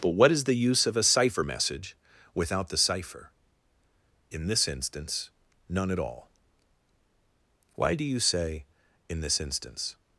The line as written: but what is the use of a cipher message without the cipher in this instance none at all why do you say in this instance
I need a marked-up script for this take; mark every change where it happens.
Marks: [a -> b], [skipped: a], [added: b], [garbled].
but what is the use of a cipher message without the cipher in this instance none at all why do you say in this instance